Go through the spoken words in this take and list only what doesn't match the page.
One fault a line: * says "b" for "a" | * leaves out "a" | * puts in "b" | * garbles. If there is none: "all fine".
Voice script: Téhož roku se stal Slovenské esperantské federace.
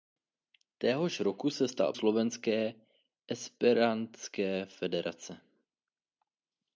all fine